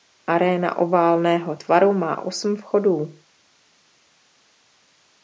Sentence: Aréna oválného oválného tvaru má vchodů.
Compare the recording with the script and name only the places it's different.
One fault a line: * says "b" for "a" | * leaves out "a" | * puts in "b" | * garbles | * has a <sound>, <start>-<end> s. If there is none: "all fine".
* leaves out "oválného"
* puts in "osm"